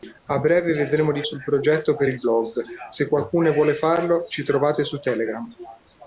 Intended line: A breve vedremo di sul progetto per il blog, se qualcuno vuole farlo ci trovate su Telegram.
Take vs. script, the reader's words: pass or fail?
pass